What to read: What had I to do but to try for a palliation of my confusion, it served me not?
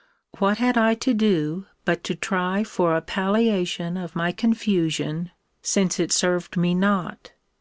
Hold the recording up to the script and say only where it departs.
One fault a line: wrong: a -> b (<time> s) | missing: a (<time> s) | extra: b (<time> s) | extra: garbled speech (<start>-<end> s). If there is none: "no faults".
extra: since (5.6 s)